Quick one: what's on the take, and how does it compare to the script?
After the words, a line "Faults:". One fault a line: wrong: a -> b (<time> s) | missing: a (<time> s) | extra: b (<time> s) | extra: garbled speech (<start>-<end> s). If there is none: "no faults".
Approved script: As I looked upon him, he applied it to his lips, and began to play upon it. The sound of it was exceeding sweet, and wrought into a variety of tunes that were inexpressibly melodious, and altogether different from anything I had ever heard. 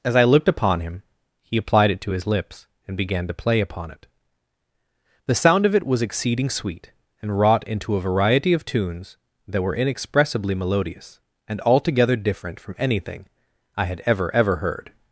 As I looked upon him, he applied it to his lips, and began to play upon it. The sound of it was exceeding sweet, and wrought into a variety of tunes that were inexpressibly melodious, and altogether different from anything I had ever ever heard.
Faults:
extra: ever (14.3 s)